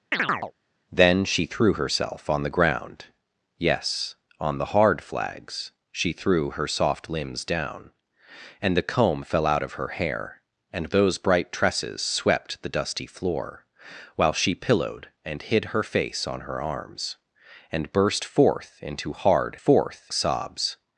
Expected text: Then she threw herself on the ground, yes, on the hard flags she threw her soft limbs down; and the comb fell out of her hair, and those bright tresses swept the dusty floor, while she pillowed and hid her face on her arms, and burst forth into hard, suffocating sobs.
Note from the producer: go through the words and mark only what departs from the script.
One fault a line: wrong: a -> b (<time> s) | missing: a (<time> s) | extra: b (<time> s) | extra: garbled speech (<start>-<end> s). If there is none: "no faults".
wrong: suffocating -> forth (19.5 s)